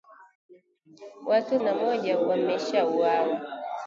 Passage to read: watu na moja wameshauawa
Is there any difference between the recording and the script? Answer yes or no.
no